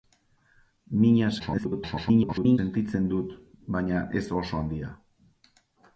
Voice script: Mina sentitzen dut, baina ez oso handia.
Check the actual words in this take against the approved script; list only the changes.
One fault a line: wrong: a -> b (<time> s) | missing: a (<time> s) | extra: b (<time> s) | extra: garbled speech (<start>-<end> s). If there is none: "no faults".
extra: garbled speech (1.4-2.6 s)